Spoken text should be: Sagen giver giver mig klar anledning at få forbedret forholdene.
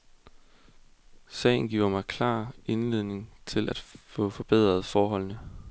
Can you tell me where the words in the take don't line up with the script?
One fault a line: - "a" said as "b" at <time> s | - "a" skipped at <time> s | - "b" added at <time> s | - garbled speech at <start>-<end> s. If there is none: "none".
- "giver" skipped at 1.9 s
- "til" added at 3.5 s